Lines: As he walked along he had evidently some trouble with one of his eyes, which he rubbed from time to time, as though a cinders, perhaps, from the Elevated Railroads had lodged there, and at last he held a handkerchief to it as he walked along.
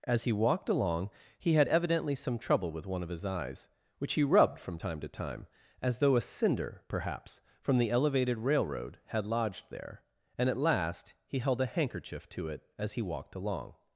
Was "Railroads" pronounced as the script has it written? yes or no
no